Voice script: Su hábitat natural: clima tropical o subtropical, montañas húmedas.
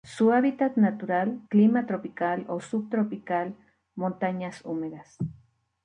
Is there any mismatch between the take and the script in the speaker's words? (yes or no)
no